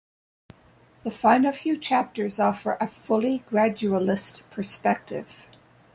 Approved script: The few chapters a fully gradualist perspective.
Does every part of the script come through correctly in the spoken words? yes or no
no